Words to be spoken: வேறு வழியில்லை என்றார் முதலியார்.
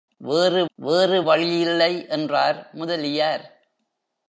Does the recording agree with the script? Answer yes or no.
no